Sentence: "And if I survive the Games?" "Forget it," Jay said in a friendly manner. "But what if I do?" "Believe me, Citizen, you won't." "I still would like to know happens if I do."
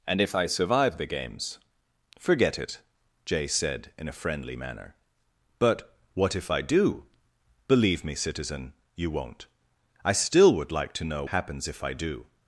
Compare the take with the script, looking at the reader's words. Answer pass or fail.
pass